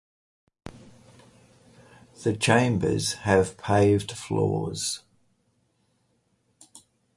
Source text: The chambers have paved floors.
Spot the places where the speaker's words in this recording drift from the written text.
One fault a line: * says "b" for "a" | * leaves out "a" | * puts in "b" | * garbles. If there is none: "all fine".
all fine